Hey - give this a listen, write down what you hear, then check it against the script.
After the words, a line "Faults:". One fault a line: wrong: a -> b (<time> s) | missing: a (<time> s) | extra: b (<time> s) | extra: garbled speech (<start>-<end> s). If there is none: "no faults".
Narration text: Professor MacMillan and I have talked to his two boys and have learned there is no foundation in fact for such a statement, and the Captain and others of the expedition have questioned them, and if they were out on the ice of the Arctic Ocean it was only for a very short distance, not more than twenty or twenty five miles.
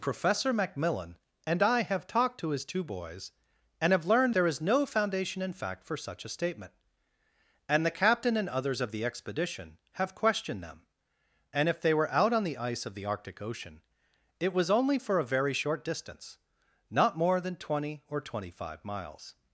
Professor MacMillan and I have talked to his two boys and have learned there is no foundation in fact for such a statement, and the Captain and others of the expedition have questioned them, and if they were out on the ice of the Arctic Ocean it was only for a very short distance, not more than twenty or twenty five miles.
Faults:
no faults